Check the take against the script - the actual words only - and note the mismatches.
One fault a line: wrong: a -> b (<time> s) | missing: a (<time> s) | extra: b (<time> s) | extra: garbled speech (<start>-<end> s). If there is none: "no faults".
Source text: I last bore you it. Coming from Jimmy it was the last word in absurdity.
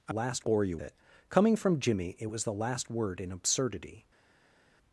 no faults